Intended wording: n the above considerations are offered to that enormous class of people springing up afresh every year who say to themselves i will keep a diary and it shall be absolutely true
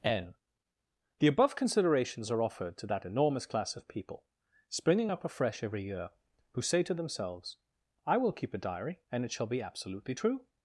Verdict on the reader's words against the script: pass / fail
pass